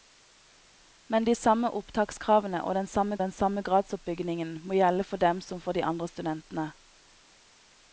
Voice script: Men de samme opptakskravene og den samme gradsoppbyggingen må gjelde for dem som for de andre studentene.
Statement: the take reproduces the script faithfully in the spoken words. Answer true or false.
false